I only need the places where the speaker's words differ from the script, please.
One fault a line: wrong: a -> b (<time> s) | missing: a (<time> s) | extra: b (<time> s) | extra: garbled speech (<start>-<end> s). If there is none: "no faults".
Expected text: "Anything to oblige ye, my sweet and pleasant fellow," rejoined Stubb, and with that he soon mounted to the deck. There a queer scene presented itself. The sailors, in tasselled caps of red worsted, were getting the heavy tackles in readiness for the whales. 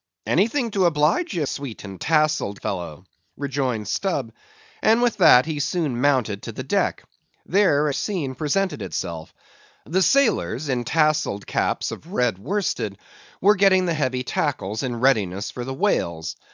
missing: my (1.4 s)
wrong: pleasant -> tasselled (2.0 s)
missing: a queer (7.9 s)